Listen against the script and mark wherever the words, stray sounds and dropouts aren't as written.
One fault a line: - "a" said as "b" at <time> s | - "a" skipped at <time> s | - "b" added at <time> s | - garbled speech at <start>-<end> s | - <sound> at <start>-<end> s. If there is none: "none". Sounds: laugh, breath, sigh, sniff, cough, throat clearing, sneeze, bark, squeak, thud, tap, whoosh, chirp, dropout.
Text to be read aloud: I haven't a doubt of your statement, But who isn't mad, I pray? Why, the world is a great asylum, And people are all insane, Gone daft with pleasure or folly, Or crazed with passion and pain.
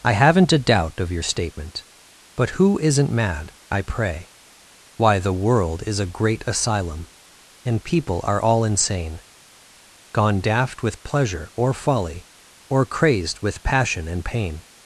none